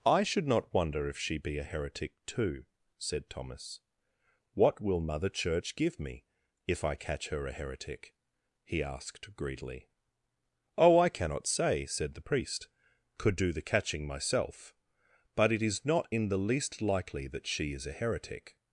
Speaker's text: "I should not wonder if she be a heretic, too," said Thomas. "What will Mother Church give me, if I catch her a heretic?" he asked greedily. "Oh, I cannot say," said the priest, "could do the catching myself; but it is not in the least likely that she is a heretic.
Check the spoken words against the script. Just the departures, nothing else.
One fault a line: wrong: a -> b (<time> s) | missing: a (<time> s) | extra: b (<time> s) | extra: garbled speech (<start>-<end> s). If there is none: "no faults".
no faults